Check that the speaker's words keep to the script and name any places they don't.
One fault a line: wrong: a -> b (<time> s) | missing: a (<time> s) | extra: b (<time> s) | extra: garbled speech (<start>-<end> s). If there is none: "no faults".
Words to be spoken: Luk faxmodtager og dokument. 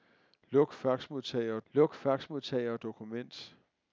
extra: luk faxmodtager og (1.7 s)